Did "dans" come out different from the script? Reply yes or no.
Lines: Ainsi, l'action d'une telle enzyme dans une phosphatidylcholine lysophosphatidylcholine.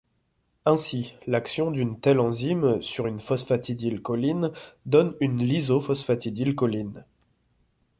yes